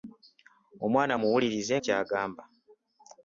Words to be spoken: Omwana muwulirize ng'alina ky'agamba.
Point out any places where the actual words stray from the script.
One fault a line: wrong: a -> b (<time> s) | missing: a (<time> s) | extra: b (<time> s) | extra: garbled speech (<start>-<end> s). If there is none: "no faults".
missing: ng'alina (1.7 s)